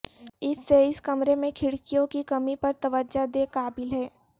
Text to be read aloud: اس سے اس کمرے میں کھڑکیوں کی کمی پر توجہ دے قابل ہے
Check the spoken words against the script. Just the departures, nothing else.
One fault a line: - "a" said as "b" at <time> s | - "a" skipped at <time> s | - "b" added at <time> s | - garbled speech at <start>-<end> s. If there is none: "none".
none